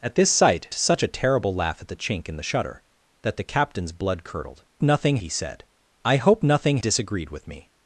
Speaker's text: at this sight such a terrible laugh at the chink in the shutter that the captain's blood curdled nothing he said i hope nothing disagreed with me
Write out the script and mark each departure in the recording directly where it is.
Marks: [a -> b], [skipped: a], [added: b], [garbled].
at this sight such a terrible laugh at the chink in the shutter that the captain's blood curdled nothing he said i hope nothing disagreed with me